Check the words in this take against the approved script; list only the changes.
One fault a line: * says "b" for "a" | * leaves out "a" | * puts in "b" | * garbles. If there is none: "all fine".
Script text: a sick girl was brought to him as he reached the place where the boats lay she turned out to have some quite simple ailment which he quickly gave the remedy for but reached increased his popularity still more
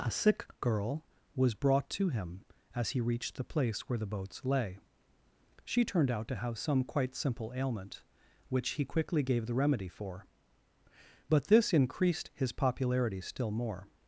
* says "this" for "reached"